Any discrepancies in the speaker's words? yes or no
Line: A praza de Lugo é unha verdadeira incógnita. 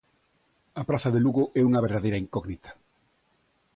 no